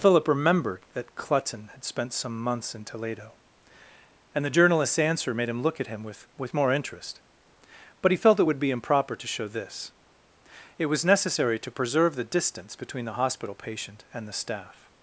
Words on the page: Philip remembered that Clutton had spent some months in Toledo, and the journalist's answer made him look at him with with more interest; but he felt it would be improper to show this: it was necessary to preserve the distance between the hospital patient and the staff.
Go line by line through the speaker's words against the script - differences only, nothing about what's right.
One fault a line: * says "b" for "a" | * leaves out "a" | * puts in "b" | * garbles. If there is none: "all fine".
all fine